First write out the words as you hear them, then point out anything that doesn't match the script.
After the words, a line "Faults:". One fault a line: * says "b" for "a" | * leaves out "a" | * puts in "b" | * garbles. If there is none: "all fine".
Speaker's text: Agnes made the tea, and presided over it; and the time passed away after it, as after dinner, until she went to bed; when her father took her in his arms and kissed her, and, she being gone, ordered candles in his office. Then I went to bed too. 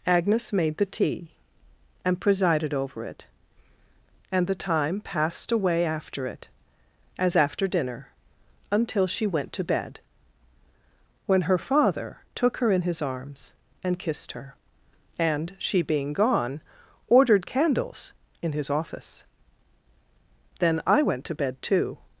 Agnes made the tea, and presided over it; and the time passed away after it, as after dinner, until she went to bed; when her father took her in his arms and kissed her, and, she being gone, ordered candles in his office. Then I went to bed too.
Faults:
all fine